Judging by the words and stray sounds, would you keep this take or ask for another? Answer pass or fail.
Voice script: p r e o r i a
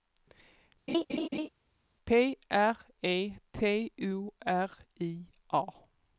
fail